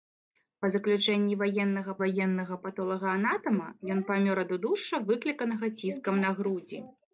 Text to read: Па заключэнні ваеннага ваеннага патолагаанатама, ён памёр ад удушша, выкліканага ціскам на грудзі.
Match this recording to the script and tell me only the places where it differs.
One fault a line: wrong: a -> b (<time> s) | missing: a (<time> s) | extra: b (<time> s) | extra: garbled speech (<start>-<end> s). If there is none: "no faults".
no faults